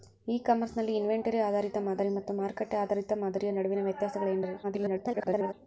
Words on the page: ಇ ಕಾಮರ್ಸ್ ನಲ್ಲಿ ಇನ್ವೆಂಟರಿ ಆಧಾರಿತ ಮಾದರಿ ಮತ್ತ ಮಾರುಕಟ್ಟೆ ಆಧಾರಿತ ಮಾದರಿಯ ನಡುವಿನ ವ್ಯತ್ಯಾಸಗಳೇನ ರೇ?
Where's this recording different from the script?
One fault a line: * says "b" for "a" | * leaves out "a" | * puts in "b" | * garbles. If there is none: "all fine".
* garbles